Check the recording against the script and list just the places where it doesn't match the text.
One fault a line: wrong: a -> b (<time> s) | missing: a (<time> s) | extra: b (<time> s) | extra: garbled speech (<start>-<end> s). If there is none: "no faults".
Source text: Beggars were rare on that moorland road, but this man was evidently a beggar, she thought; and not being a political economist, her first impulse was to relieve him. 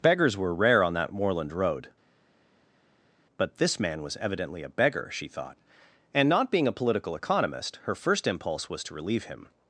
no faults